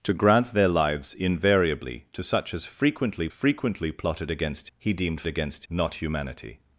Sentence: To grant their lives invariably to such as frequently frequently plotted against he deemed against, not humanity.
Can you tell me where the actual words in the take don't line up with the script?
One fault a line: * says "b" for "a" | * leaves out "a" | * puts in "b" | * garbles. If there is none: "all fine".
all fine